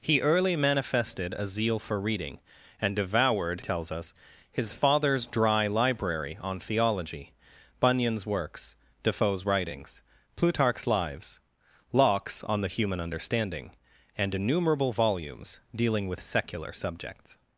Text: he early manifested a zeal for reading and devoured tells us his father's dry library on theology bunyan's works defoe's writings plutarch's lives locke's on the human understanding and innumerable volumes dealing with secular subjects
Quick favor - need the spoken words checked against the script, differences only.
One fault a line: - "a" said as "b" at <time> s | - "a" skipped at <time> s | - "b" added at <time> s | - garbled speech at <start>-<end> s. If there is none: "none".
none